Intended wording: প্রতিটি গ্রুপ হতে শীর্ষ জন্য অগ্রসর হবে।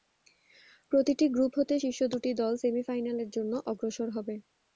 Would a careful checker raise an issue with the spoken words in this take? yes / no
yes